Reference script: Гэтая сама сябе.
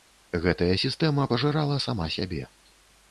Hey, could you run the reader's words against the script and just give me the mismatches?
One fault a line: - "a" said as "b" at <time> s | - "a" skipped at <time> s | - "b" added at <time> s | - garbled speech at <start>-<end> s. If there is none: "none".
- "сістэма пажырала" added at 0.8 s